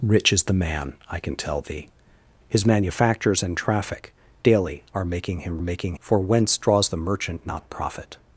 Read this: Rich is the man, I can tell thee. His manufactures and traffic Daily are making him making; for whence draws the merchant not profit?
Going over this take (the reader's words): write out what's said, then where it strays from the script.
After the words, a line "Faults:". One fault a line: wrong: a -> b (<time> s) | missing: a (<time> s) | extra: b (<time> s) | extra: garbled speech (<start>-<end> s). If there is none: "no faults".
Rich is the man, I can tell thee. His manufactures and traffic Daily are making him making; for whence draws the merchant not profit?
Faults:
no faults